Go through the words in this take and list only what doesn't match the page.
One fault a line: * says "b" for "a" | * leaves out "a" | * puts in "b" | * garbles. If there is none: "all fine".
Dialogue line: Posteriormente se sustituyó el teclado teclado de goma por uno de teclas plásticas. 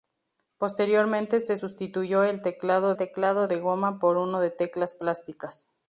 all fine